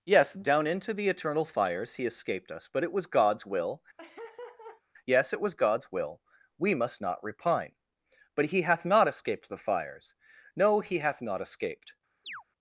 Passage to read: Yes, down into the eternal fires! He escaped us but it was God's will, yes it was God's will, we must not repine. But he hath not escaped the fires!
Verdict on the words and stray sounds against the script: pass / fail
fail